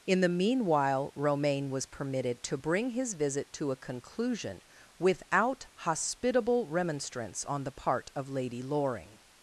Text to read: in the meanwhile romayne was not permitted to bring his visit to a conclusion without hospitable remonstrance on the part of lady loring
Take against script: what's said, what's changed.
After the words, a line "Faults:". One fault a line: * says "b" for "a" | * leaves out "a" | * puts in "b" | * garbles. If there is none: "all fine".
in the meanwhile romayne was permitted to bring his visit to a conclusion without hospitable remonstrance on the part of lady loring
Faults:
* leaves out "not"